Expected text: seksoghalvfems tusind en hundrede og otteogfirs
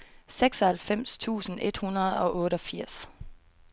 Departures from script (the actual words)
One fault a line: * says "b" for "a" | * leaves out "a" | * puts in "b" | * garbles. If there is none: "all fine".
* says "et" for "en"